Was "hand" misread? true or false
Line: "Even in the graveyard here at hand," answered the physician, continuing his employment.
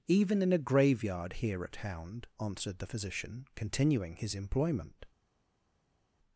true